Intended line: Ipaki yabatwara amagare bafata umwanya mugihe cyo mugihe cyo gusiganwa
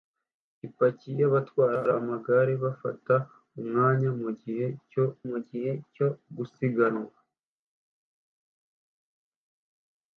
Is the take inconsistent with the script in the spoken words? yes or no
no